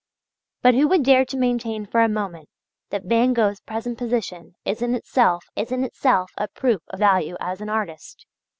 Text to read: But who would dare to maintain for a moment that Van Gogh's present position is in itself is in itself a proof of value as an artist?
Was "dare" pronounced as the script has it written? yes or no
yes